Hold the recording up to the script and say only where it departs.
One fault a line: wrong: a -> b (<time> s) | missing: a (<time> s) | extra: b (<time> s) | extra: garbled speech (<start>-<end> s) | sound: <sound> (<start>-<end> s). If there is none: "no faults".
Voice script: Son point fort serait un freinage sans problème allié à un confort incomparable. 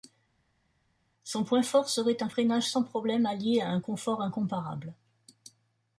no faults